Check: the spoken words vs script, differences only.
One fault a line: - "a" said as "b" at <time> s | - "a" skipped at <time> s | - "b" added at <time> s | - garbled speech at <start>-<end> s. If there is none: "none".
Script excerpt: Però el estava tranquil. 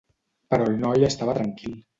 - "noi" added at 0.8 s